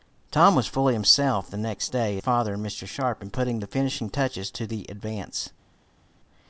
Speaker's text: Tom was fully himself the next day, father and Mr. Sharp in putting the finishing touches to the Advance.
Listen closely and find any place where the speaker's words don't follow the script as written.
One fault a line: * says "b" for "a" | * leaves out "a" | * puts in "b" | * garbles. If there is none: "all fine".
all fine